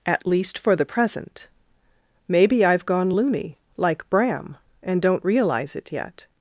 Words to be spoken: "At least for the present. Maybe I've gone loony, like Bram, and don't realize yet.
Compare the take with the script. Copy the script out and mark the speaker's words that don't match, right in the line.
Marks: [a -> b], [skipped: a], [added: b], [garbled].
"At least for the present. Maybe I've gone loony, like Bram, and don't realize [added: it] yet.